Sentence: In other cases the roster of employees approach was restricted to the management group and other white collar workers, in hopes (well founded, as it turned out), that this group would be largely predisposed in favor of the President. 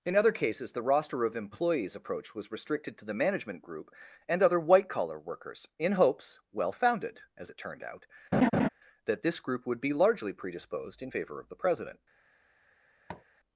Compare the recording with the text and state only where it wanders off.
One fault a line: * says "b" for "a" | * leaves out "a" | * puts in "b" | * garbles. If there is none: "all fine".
all fine